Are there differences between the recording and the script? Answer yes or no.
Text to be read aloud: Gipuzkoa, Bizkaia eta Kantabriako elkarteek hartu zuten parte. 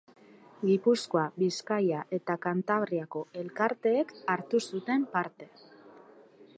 no